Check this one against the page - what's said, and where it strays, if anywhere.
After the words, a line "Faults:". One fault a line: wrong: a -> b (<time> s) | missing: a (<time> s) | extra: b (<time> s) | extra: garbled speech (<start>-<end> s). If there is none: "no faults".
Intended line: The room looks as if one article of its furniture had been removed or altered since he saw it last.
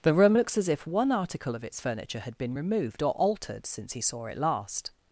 The room looks as if one article of its furniture had been removed or altered since he saw it last.
Faults:
no faults